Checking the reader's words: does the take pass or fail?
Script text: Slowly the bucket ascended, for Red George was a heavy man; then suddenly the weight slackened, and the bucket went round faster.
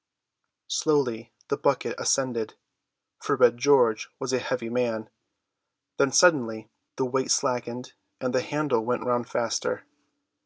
fail